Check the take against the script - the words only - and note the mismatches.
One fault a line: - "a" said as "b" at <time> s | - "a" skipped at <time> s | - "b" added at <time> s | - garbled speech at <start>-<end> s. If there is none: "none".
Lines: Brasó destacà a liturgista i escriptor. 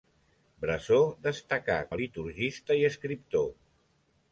none